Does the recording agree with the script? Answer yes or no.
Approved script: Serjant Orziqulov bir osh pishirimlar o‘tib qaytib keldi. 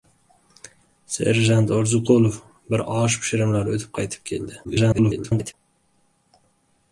no